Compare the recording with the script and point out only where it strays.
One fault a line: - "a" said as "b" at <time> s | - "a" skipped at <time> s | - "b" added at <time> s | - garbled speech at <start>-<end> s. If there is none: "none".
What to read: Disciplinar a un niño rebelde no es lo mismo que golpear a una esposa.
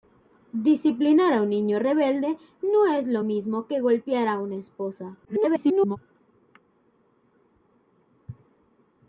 - garbled speech at 5.2-6.0 s